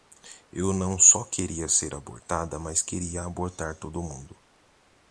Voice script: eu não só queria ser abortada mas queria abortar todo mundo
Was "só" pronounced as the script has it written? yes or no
yes